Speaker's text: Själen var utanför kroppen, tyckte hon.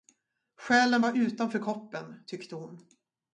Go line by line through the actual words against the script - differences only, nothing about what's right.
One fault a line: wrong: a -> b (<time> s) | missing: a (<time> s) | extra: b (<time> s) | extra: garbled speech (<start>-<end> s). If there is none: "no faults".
no faults